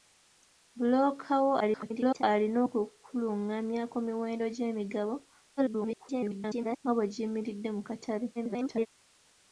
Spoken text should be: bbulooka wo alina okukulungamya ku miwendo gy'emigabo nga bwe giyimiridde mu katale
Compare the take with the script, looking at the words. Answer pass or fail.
fail